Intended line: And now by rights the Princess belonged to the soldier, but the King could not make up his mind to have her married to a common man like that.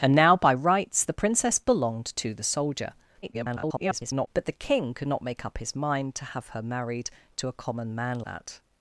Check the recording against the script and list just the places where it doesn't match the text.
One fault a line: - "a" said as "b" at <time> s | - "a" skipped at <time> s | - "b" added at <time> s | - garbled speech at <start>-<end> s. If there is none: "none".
- garbled speech at 3.2-4.3 s
- "like" skipped at 8.2 s